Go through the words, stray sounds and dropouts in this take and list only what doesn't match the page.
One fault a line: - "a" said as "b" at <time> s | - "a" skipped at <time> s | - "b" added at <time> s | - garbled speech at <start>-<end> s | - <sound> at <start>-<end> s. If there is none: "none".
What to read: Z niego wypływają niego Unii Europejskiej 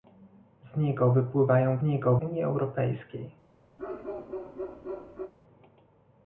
- bark at 3.8-5.3 s